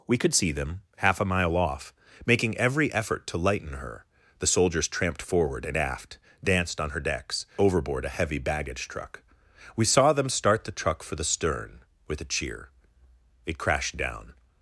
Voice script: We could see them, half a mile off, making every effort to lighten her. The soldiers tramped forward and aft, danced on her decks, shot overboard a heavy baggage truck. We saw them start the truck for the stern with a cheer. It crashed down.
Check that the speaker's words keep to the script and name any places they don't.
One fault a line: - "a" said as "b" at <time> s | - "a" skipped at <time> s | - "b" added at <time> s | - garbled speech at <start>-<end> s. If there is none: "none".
- "shot" skipped at 7.5 s